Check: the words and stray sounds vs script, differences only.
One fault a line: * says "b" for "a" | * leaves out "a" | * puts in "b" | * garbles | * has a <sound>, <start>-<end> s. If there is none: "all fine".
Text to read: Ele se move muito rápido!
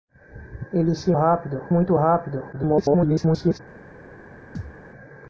* says "rápido" for "move"
* garbles
* has a thud, 4.6-4.8 s